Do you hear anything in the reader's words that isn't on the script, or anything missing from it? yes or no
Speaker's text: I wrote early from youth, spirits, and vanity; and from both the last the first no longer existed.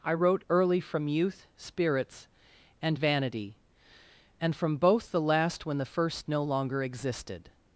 yes